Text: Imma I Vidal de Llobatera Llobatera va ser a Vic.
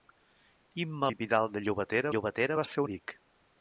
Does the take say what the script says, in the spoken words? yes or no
yes